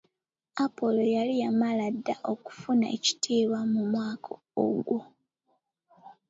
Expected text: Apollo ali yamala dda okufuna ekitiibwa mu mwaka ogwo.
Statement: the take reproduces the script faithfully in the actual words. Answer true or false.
false